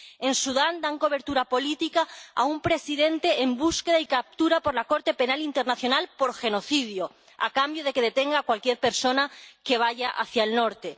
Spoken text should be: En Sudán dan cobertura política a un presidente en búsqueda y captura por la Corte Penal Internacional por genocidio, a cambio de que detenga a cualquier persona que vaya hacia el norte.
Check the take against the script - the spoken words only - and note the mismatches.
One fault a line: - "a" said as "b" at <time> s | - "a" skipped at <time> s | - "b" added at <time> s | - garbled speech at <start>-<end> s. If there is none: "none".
none